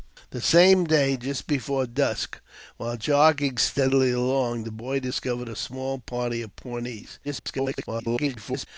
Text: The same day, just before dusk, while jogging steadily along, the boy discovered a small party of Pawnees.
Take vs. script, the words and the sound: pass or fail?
fail